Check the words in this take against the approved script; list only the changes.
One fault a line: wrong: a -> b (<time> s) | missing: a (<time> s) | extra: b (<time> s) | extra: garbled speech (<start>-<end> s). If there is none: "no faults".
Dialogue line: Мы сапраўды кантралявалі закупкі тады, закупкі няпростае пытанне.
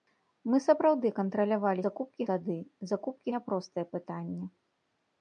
no faults